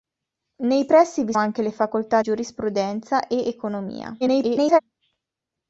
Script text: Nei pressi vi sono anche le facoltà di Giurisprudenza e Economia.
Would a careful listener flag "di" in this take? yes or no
yes